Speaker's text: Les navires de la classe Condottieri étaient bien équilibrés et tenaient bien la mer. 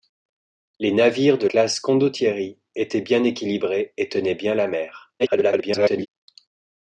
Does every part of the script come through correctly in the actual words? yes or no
no